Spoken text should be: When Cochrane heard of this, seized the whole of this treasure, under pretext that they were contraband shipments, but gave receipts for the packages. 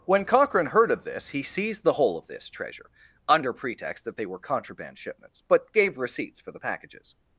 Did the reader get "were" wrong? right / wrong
right